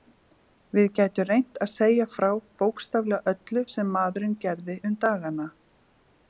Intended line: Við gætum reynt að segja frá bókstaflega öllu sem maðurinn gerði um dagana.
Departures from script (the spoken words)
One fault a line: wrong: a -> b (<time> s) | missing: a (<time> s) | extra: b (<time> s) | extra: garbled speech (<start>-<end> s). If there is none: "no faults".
no faults